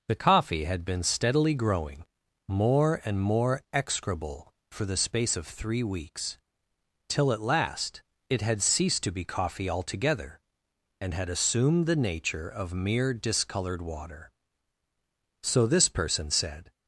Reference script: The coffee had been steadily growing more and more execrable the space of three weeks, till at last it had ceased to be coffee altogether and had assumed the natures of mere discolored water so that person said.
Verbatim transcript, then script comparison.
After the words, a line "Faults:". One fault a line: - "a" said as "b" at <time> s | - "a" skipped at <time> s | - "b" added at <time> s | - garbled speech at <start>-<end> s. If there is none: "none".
The coffee had been steadily growing more and more execrable for the space of three weeks, till at last it had ceased to be coffee altogether and had assumed the nature of mere discolored water so this person said.
Faults:
- "for" added at 4.7 s
- "natures" said as "nature" at 12.0 s
- "that" said as "this" at 15.7 s